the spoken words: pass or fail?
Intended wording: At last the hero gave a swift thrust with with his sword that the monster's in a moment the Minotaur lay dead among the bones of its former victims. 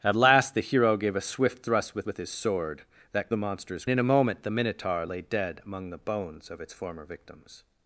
pass